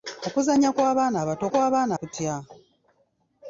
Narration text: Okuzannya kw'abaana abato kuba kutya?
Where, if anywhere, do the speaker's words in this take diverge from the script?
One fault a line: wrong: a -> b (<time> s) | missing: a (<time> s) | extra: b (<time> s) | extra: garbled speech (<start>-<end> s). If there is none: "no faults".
wrong: kuba -> kw'abaana (1.5 s)